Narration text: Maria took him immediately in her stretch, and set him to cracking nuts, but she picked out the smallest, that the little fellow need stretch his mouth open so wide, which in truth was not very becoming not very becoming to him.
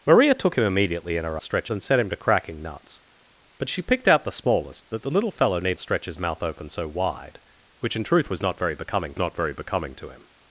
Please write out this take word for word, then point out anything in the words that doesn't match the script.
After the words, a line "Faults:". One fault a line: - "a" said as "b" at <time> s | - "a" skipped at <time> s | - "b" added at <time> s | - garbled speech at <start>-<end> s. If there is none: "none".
Maria took him immediately in her stretch, and set him to cracking nuts, but she picked out the smallest, that the little fellow need stretch his mouth open so wide, which in truth was not very becoming not very becoming to him.
Faults:
none